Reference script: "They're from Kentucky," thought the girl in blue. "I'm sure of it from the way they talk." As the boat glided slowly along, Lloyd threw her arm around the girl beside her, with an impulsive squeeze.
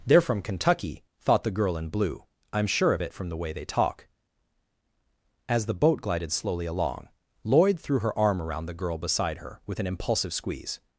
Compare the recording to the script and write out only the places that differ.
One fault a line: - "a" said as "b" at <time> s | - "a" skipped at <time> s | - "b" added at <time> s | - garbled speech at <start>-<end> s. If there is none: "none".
none